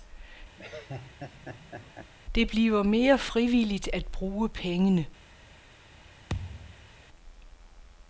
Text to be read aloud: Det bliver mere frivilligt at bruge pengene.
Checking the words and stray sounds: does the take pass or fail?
fail